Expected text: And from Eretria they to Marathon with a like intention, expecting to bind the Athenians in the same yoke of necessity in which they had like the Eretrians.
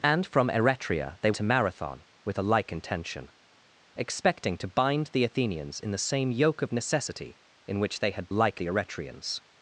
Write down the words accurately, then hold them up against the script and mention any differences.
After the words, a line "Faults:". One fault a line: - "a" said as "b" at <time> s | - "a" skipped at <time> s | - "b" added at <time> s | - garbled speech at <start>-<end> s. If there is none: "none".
And from Eretria they to Marathon with a like intention, expecting to bind the Athenians in the same yoke of necessity in which they had like the Eretrians.
Faults:
none